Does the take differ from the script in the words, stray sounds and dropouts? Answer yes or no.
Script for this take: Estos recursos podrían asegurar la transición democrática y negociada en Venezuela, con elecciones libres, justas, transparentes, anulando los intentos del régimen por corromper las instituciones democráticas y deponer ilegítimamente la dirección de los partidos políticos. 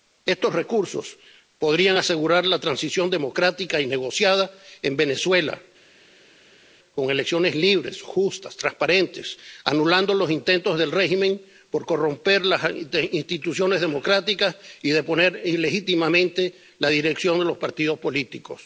no